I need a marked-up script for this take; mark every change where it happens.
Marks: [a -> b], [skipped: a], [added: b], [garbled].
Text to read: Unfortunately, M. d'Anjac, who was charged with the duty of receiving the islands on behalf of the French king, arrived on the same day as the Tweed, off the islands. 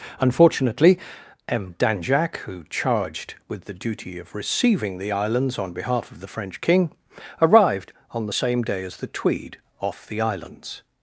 Unfortunately, M. d'Anjac, who [skipped: was] charged with the duty of receiving the islands on behalf of the French king, arrived on the same day as the Tweed, off the islands.